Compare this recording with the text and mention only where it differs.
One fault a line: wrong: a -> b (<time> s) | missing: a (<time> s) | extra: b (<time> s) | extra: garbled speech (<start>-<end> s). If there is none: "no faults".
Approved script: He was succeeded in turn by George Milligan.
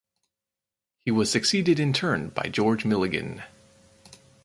no faults